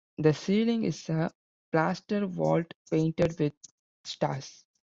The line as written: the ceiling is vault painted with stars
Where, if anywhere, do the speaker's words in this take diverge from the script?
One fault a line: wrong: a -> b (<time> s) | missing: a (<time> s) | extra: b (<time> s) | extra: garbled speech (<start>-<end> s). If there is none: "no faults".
extra: a plaster (1.1 s)